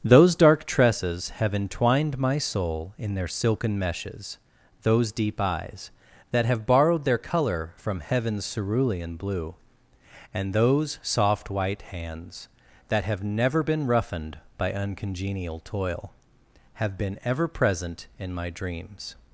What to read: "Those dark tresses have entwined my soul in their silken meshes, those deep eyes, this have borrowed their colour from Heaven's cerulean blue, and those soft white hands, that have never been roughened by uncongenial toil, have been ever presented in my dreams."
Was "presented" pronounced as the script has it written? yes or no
no